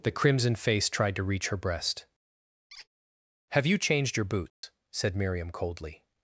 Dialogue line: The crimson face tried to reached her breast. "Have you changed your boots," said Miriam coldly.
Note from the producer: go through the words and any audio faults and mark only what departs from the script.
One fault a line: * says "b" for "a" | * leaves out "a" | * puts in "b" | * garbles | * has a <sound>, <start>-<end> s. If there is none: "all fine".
* says "reach" for "reached"
* has a squeak, 2.7-2.9 s
* has a dropout, 4.5-4.6 s